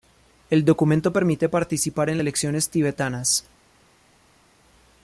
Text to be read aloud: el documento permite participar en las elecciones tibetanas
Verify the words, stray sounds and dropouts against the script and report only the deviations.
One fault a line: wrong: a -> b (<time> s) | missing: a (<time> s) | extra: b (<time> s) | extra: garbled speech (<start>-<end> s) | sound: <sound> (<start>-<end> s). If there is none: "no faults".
missing: las (2.2 s)